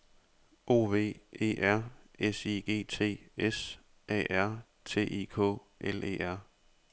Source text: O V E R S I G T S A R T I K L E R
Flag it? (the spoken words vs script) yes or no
no